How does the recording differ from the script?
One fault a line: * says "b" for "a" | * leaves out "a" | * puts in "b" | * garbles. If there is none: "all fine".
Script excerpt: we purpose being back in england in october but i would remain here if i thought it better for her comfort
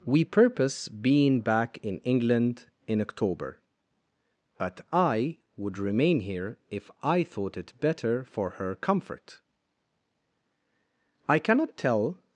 * puts in "i cannot tell"